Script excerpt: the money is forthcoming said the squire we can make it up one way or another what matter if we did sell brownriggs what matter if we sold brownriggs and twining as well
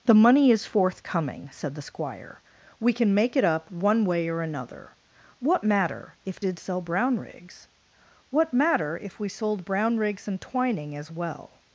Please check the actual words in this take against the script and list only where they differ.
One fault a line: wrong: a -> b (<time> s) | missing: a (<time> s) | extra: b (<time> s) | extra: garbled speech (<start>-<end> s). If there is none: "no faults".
missing: we (6.4 s)